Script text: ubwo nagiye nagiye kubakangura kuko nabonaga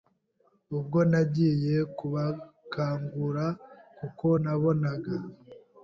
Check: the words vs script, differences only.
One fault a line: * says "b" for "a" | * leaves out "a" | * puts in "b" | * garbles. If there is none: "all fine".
* leaves out "nagiye"